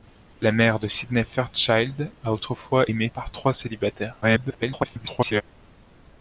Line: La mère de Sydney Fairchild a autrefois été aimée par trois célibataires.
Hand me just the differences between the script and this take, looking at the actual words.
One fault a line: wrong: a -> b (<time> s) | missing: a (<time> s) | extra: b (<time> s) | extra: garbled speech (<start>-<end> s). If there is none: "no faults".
missing: été (2.9 s)
extra: garbled speech (4.2-5.4 s)